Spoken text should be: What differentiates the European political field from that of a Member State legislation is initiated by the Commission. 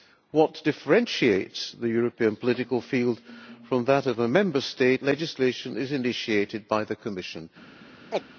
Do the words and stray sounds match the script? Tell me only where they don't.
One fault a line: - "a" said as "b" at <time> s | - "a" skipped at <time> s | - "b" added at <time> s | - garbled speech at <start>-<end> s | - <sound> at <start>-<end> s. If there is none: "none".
- chirp at 8.1-8.2 s